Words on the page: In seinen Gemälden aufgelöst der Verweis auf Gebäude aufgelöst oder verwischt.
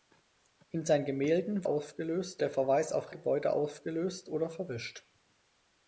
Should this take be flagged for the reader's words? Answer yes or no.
no